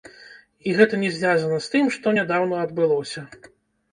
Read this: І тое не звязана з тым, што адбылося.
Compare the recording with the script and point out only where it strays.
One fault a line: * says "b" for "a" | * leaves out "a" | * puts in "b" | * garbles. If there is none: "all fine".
* says "гэта" for "тое"
* puts in "нядаўна"